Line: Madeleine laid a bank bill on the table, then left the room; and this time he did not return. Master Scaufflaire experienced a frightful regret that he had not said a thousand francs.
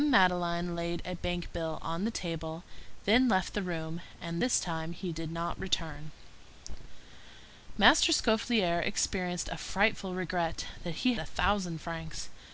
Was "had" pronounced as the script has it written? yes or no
no